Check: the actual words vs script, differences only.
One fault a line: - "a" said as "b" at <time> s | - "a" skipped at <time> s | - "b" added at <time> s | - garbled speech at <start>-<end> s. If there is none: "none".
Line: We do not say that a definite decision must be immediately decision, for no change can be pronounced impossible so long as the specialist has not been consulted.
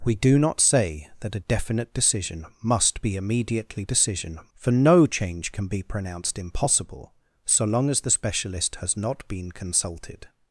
none